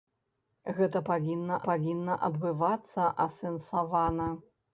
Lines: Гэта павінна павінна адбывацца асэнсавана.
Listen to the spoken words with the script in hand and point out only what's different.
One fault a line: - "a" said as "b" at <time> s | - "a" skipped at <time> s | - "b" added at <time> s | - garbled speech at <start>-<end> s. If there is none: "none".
none